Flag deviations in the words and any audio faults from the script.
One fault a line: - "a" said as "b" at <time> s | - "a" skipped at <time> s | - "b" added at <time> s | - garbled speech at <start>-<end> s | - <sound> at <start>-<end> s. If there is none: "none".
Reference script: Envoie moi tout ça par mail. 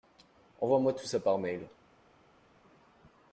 none